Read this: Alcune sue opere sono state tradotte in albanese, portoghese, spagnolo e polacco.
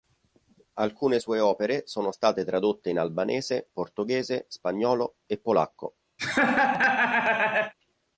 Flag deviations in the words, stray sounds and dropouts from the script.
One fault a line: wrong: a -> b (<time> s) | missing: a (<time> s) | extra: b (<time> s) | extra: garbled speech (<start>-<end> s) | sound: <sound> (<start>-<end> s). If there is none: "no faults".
sound: laugh (6.2-7.7 s)